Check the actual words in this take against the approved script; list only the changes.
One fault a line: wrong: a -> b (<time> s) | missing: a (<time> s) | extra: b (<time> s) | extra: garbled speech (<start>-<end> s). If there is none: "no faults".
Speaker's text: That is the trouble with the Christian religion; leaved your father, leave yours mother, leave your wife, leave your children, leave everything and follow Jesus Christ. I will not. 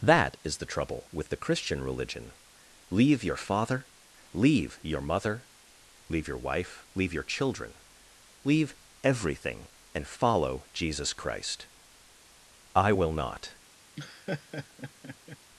wrong: leaved -> leave (2.9 s)
wrong: yours -> your (4.8 s)